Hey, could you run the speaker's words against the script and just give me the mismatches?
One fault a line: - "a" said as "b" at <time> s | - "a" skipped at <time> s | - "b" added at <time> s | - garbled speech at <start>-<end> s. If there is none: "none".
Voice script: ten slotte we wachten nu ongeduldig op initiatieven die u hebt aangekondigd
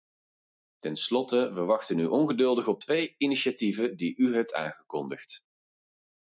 - "twee" added at 2.8 s